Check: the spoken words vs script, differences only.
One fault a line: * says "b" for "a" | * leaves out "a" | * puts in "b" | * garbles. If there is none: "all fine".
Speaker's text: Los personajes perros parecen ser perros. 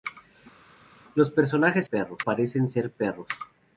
all fine